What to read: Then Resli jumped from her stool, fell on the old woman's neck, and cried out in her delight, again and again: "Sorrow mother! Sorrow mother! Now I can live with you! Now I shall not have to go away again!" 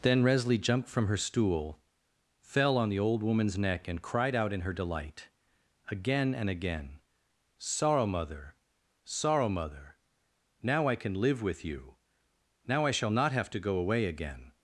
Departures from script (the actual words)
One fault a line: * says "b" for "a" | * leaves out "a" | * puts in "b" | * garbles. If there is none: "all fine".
all fine